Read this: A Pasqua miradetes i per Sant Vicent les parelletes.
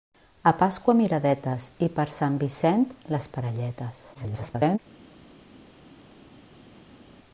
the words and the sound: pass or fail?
fail